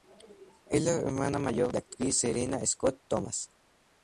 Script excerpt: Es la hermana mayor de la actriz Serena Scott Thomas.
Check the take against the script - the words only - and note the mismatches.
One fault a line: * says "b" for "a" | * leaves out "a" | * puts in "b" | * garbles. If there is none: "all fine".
* leaves out "de"